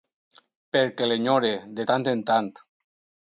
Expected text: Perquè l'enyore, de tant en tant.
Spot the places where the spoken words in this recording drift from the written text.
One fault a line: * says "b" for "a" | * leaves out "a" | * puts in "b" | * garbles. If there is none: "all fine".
all fine